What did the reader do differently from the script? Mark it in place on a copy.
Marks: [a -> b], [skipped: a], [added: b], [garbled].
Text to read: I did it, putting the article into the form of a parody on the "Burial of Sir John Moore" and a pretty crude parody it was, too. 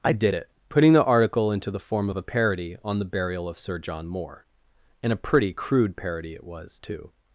I did it, putting the article into the form of a parody on the "Burial of Sir John Moore" and a pretty crude parody it was, too.